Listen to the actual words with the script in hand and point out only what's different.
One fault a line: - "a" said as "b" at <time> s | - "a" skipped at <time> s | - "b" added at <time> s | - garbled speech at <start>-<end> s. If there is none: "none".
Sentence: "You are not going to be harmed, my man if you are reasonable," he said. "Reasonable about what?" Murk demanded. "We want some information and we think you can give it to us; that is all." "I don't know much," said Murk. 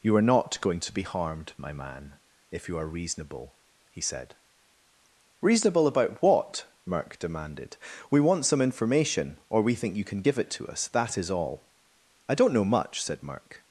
- "and" said as "or" at 9.5 s